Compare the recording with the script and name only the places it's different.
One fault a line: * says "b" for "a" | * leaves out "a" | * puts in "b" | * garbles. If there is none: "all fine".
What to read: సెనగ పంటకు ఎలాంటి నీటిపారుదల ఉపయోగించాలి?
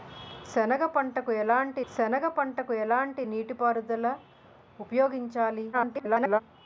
* puts in "సెనగ పంటకు ఎలాంటి"
* garbles